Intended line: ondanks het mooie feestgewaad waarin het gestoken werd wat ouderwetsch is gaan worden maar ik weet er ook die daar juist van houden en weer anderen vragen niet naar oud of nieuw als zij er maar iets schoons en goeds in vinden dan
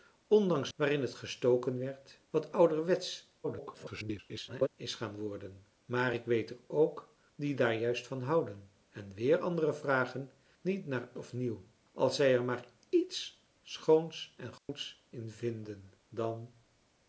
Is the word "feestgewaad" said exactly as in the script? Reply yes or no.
no